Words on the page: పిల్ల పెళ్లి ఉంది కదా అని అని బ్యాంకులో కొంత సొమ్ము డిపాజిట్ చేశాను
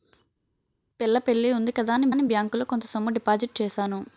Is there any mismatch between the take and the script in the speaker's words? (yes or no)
no